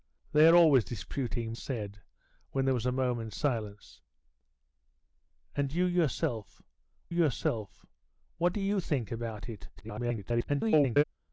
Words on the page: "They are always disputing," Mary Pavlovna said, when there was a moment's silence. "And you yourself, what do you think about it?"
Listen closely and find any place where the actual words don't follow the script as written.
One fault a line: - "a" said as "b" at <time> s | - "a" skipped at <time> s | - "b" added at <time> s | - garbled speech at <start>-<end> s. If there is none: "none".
- "Mary Pavlovna" skipped at 1.5 s
- "yourself" added at 7.1 s
- garbled speech at 9.8-11.0 s